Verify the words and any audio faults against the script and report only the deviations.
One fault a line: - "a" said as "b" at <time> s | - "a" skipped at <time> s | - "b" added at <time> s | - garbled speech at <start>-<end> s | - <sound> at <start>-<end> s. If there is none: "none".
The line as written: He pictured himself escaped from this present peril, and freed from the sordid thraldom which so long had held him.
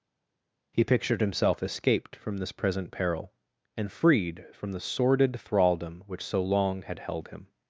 none